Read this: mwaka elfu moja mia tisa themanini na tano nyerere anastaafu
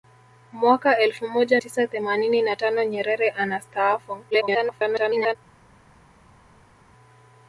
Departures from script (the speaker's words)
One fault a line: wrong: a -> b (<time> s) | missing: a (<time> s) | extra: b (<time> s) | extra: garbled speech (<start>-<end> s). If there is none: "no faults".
missing: mia (1.6 s)
extra: garbled speech (4.3-5.4 s)